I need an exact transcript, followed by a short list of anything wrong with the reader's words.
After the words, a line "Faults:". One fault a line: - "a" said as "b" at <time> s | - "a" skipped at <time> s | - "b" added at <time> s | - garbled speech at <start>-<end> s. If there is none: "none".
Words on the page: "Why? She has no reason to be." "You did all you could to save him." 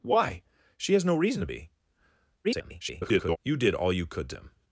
"Why? She has no reason to be." [garbled] "You did all you could to him."
Faults:
- garbled speech at 2.4-3.4 s
- "save" skipped at 4.4 s